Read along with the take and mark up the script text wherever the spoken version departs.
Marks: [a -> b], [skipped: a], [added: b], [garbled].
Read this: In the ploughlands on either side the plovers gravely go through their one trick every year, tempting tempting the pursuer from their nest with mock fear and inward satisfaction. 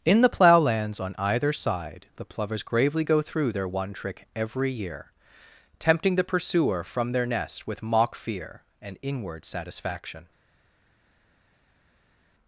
In the ploughlands on either side the plovers gravely go through their one trick every year, tempting [skipped: tempting] the pursuer from their nest with mock fear and inward satisfaction.